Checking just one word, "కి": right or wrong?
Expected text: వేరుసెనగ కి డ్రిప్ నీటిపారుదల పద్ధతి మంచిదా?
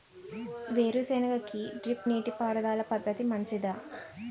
right